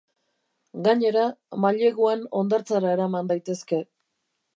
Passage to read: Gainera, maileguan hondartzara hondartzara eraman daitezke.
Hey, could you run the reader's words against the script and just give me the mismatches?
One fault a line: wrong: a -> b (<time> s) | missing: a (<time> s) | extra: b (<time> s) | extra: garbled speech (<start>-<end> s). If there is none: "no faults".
missing: hondartzara (2.9 s)